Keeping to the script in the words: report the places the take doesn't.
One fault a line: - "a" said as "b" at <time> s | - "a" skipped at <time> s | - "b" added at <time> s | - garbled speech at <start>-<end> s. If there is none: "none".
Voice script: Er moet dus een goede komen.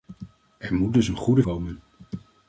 none